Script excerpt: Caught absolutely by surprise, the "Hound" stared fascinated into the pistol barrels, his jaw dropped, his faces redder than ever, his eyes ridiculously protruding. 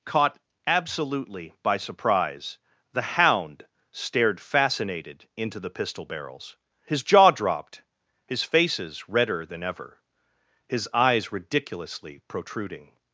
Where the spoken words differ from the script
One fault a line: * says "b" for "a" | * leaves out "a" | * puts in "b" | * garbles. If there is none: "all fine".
all fine